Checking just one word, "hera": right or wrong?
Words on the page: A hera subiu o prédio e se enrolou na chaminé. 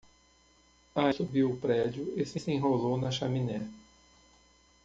wrong